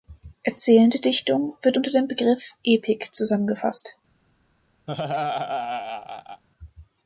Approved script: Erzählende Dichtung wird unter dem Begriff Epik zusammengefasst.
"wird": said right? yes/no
yes